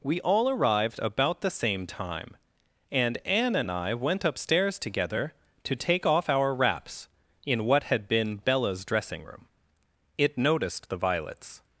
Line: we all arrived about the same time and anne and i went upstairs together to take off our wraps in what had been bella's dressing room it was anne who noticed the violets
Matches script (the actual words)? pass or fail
fail